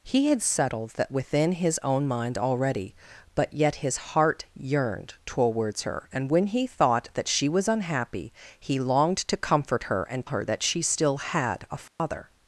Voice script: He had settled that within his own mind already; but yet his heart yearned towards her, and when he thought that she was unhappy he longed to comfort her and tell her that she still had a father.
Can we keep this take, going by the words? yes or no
no